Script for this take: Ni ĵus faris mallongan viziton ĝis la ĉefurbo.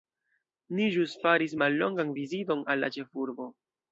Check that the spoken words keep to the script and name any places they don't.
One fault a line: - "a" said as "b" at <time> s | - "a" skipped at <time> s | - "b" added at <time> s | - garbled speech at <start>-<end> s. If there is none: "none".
- "ĝis" said as "al" at 2.7 s